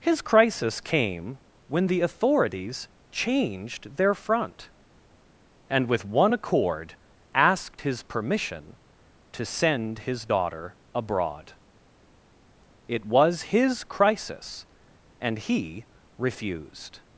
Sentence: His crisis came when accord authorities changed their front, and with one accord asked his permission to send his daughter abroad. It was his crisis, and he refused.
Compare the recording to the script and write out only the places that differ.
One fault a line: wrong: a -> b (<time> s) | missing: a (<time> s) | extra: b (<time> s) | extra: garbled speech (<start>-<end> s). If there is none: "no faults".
wrong: accord -> the (1.9 s)